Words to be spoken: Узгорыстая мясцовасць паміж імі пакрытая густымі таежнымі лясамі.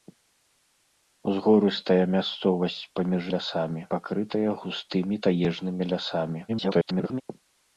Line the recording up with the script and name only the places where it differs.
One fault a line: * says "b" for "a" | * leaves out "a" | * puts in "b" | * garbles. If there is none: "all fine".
* says "лясамі" for "імі"
* garbles